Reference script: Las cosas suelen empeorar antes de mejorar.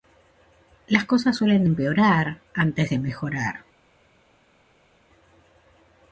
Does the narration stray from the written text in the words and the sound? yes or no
no